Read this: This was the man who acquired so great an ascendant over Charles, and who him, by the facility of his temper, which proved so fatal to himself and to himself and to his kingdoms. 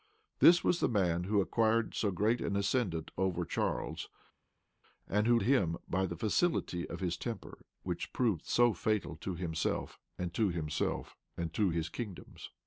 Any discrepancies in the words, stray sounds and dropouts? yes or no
no